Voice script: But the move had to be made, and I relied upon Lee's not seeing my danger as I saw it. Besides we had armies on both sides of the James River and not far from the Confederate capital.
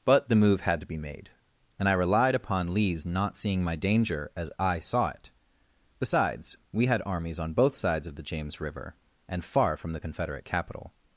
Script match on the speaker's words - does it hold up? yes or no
no